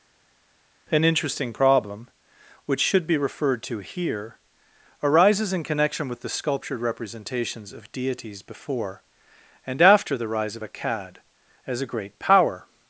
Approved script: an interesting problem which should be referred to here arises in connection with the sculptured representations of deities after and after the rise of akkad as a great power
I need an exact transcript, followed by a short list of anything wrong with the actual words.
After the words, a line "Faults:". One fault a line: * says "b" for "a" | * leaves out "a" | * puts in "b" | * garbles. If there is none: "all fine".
an interesting problem which should be referred to here arises in connection with the sculptured representations of deities before and after the rise of akkad as a great power
Faults:
* says "before" for "after"